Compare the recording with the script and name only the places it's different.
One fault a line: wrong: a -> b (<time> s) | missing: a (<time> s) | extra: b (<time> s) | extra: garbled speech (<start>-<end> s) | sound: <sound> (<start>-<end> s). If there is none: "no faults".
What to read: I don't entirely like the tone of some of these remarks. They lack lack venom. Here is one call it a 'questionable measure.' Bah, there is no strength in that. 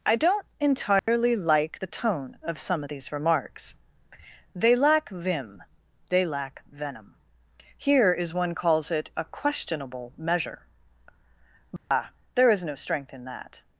sound: dropout (1.0-1.1 s)
extra: vim they (5.1 s)
wrong: call -> calls (8.5 s)
sound: dropout (11.8-11.9 s)